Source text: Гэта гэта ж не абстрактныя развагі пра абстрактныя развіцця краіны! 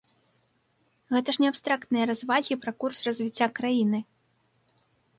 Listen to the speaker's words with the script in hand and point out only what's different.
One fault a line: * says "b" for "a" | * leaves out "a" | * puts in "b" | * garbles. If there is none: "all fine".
* leaves out "гэта"
* says "курс" for "абстрактныя"